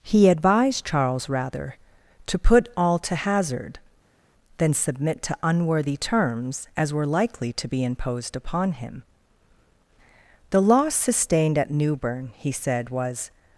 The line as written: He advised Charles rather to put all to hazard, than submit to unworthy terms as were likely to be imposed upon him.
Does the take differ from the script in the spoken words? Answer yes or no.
yes